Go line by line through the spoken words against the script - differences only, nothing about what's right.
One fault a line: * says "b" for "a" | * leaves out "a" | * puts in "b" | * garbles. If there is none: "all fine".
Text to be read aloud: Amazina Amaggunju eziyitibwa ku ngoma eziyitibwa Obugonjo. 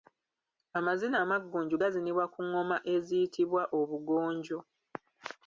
* says "gazinibwa" for "eziyitibwa"